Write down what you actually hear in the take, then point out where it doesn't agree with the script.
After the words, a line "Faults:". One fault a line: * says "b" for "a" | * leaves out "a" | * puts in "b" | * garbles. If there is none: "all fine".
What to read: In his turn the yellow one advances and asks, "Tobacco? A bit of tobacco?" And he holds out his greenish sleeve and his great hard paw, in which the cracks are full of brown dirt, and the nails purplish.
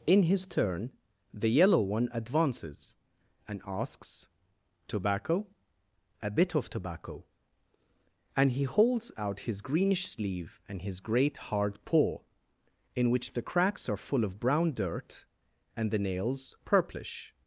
In his turn the yellow one advances and asks, "Tobacco? A bit of tobacco?" And he holds out his greenish sleeve and his great hard paw, in which the cracks are full of brown dirt, and the nails purplish.
Faults:
all fine